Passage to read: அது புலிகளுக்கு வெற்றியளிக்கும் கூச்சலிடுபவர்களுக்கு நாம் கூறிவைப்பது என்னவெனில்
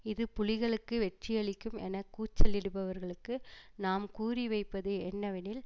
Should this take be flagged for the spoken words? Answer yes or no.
yes